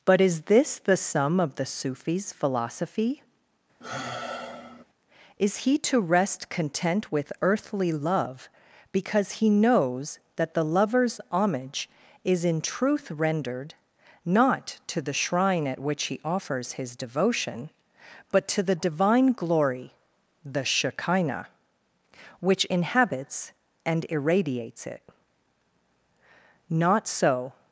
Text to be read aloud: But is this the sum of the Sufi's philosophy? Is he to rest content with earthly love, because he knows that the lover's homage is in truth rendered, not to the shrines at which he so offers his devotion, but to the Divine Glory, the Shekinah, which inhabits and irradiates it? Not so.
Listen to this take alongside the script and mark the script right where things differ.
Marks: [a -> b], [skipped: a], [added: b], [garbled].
But is this the sum of the Sufi's philosophy? Is he to rest content with earthly love, because he knows that the lover's homage is in truth rendered, not to the [shrines -> shrine] at which he [skipped: so] offers his devotion, but to the Divine Glory, the Shekinah, which inhabits and irradiates it? Not so.